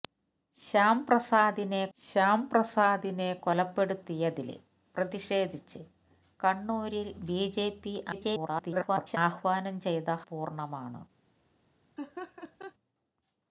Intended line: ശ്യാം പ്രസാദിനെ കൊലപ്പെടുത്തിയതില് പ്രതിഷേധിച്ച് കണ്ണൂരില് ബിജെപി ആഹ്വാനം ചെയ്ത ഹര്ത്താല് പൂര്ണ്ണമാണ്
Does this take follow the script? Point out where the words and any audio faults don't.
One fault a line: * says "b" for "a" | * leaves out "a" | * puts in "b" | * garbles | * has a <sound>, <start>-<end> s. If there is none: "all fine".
* puts in "ശ്യാം പ്രസാദിനെ"
* garbles
* leaves out "ഹര്ത്താല്"
* has a laugh, 12.0-12.7 s